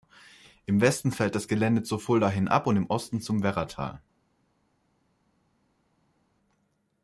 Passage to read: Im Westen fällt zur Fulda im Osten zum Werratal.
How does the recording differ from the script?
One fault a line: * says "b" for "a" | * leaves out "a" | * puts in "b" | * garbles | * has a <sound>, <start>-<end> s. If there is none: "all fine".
* puts in "das Gelände"
* puts in "hin ab und"